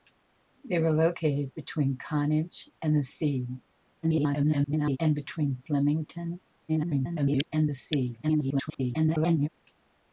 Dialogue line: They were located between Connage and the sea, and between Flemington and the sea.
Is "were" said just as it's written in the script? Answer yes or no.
yes